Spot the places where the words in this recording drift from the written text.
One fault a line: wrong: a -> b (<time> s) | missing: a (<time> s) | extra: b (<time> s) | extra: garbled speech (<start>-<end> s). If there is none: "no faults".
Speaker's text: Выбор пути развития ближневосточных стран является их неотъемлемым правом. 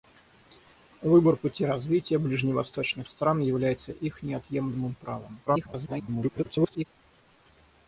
extra: garbled speech (5.5-6.9 s)